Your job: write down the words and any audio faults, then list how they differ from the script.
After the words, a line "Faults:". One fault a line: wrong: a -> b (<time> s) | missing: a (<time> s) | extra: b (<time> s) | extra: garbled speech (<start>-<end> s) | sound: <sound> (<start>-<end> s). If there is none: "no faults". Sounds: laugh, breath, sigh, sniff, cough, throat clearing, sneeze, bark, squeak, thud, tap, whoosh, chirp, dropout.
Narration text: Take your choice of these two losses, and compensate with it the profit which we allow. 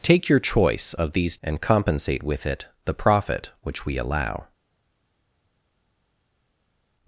Take your choice of these and compensate with it the profit which we allow.
Faults:
missing: two losses (1.4 s)